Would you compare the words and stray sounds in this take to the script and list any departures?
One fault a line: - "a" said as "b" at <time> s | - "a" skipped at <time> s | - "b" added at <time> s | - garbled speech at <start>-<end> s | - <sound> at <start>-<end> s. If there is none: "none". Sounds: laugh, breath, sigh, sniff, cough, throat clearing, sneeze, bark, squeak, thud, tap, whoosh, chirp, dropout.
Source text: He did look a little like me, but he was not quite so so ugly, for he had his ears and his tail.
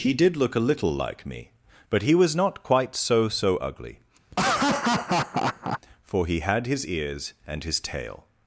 - laugh at 4.3-5.8 s